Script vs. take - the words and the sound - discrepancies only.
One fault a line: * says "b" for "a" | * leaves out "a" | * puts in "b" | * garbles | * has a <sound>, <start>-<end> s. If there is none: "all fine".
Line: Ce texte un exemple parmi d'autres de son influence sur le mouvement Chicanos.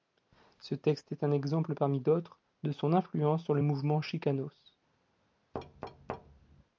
* puts in "est"
* has a thud, 5.5-6.6 s